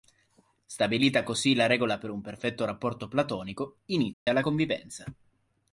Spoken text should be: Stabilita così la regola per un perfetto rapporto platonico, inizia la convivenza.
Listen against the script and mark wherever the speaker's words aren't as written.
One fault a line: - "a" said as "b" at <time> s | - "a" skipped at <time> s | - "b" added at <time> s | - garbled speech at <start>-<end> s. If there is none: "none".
none